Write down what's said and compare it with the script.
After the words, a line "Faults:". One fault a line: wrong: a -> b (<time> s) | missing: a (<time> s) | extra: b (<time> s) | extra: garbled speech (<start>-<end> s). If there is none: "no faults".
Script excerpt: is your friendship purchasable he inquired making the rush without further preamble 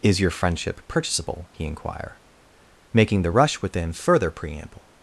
is your friendship purchasable he inquire making the rush within further preamble
Faults:
wrong: inquired -> inquire (1.6 s)
wrong: without -> within (3.6 s)